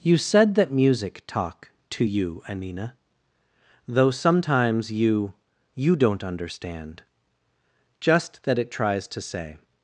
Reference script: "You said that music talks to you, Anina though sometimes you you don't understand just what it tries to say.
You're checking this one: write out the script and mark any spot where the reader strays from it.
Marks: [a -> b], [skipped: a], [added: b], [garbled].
"You said that music [talks -> talk] to you, Anina though sometimes you you don't understand just [what -> that] it tries to say.